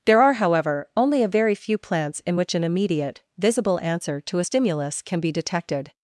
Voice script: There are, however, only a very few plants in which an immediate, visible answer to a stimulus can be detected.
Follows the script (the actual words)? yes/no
yes